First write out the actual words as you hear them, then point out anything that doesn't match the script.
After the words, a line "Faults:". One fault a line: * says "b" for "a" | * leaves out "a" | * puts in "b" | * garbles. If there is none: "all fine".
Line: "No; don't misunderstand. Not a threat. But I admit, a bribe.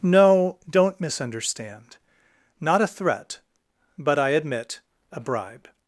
"No; don't misunderstand. Not a threat. But I admit, a bribe.
Faults:
all fine